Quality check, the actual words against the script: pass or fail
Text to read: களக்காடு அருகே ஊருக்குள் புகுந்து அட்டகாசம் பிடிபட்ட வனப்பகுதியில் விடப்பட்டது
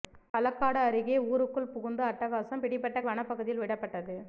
pass